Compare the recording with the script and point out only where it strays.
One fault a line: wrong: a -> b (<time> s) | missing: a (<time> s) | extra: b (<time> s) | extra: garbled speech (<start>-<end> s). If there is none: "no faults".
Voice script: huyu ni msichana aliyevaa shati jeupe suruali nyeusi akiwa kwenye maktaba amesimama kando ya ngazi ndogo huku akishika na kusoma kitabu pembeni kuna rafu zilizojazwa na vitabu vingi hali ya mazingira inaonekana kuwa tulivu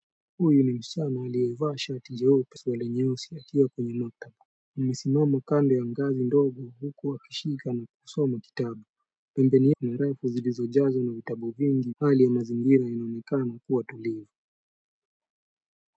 no faults